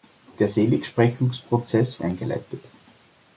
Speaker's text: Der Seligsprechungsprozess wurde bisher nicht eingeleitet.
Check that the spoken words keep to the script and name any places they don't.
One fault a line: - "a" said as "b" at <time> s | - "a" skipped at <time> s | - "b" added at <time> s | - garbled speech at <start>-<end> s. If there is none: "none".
- "wurde bisher nicht" skipped at 2.0 s